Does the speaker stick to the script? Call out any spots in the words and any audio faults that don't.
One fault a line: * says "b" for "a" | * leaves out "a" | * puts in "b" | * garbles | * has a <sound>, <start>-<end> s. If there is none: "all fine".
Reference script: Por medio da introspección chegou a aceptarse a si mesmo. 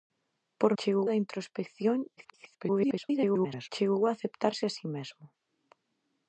* says "chegou" for "medio"
* garbles